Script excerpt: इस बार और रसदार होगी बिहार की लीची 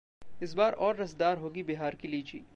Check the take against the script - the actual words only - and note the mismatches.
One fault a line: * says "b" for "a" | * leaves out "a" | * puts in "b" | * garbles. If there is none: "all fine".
all fine